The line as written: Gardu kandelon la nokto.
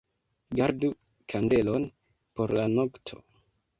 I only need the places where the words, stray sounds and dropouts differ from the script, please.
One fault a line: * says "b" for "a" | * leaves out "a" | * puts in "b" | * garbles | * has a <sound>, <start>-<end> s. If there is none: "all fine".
* puts in "por"